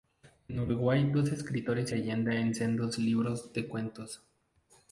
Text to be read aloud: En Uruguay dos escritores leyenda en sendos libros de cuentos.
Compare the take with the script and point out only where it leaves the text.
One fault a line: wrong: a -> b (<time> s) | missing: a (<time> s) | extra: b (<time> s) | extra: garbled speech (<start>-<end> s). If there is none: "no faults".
no faults